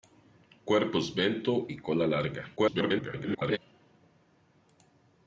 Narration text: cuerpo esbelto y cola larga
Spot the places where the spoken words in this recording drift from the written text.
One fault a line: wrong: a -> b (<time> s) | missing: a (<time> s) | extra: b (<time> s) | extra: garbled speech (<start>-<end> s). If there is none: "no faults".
extra: garbled speech (2.6-3.6 s)